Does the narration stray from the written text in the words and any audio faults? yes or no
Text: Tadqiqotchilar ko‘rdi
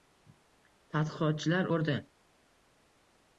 no